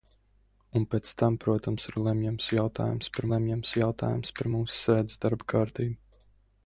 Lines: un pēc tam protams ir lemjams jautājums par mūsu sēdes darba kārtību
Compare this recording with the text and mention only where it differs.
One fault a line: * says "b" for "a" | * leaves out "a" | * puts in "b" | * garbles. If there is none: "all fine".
* puts in "lemjams jautājums par"